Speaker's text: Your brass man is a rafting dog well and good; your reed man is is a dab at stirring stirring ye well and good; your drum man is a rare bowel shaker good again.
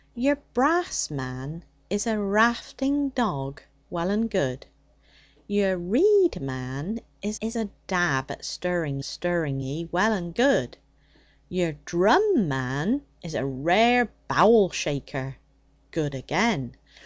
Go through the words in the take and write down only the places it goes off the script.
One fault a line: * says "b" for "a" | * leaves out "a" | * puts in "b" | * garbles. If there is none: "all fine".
all fine